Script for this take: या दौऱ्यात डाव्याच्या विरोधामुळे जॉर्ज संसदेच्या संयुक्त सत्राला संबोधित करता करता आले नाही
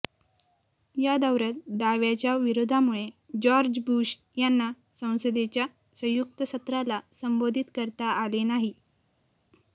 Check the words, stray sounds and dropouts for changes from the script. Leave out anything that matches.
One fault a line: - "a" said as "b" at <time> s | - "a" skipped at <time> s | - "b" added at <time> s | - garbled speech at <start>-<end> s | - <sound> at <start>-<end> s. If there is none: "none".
- "बुश यांना" added at 3.9 s
- "करता" skipped at 8.1 s